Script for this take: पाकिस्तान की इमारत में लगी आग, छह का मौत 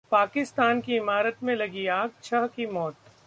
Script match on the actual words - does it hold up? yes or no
no